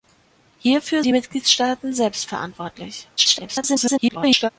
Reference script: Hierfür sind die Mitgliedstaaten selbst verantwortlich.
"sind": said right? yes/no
no